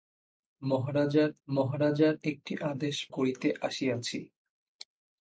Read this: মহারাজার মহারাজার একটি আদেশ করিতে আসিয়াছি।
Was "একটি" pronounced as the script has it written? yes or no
yes